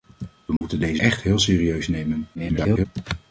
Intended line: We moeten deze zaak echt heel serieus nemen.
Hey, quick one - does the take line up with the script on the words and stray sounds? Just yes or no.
no